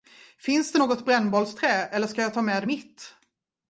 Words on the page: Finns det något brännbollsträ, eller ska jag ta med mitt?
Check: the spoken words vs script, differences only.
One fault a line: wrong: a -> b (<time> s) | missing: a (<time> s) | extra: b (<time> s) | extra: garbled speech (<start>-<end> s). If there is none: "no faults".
no faults